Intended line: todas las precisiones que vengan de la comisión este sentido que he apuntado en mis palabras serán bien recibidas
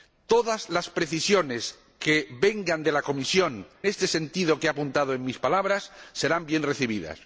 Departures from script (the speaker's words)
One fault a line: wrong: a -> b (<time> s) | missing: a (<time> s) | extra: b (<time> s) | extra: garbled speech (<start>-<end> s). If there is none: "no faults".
no faults